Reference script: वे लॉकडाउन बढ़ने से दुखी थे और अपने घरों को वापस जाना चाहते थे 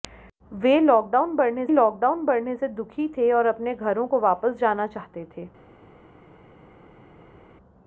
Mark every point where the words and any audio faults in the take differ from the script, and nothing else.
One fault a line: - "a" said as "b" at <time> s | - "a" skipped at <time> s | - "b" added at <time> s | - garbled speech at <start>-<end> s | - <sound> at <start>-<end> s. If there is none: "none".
- "लॉकडाउन बढ़ने" added at 1.7 s